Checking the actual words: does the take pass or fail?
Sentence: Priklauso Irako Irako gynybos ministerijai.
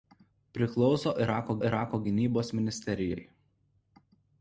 pass